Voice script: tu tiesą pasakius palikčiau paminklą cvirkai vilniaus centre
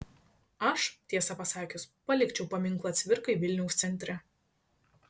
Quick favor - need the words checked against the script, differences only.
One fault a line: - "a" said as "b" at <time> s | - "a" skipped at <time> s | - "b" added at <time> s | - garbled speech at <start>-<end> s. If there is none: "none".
- "tu" said as "aš" at 0.7 s